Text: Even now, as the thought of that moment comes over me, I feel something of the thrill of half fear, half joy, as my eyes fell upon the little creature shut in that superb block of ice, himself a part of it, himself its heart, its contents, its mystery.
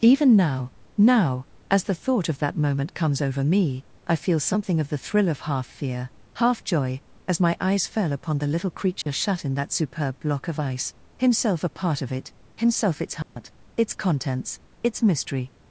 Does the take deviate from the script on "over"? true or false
false